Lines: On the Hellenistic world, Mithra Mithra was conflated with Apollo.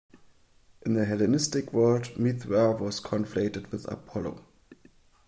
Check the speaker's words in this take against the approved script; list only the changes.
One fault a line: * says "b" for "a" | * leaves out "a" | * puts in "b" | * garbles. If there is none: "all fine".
* says "In" for "On"
* leaves out "Mithra"